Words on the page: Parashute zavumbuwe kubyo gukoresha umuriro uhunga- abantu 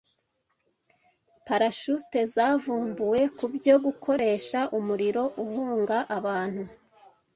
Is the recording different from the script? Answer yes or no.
no